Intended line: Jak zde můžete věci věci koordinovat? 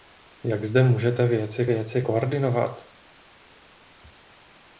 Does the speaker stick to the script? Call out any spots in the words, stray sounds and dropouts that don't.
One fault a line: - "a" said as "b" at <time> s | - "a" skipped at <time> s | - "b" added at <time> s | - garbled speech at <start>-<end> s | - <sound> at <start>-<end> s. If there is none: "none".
none